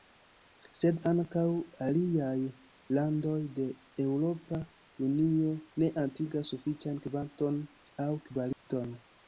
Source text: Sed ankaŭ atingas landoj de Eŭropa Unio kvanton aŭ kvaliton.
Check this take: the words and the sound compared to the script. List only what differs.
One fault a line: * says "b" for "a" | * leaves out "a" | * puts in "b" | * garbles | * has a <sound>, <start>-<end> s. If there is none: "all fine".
* says "aliaj" for "atingas"
* puts in "ne atingas sufiĉan"
* has a dropout, 8.5-8.7 s